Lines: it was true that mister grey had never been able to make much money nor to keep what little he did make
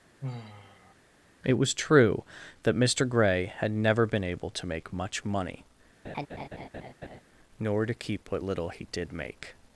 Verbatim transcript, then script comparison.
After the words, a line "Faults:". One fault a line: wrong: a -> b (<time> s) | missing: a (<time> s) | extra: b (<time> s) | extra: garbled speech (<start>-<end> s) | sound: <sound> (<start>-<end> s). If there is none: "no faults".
it was true that mister grey had never been able to make much money nor to keep what little he did make
Faults:
sound: sigh (0.2-0.9 s)
sound: laugh (6.0-7.2 s)